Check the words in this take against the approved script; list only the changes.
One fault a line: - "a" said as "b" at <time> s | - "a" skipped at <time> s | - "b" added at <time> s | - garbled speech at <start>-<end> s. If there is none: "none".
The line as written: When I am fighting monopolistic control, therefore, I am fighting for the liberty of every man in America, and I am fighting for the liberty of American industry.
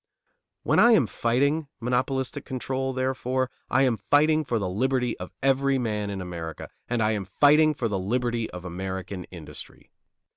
none